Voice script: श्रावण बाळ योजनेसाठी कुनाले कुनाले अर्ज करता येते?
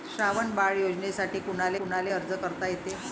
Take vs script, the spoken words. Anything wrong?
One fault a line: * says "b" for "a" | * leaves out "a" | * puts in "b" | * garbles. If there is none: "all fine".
all fine